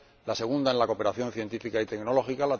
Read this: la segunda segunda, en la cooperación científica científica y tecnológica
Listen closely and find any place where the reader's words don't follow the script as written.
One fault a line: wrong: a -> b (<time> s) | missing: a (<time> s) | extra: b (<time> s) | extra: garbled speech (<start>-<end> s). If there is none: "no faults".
missing: segunda (0.7 s)
missing: científica (1.8 s)